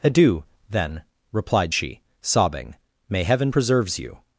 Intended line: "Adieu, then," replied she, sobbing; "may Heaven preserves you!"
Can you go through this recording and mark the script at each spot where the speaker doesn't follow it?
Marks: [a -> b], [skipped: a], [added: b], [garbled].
"Adieu, then," replied she, sobbing; "may Heaven preserves you!"